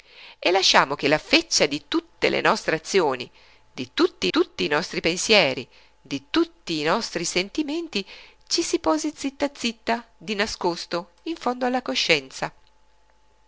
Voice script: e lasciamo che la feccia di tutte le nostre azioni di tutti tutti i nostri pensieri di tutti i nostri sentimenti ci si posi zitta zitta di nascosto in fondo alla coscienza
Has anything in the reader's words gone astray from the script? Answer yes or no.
no